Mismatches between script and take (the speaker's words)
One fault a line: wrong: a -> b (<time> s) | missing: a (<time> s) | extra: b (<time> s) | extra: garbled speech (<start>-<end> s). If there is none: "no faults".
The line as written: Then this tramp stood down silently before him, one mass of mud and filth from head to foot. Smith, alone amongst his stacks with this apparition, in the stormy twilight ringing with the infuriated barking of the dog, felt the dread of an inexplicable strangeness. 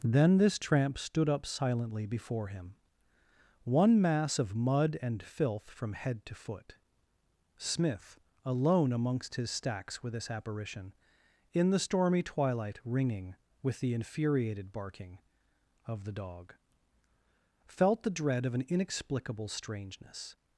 wrong: down -> up (1.3 s)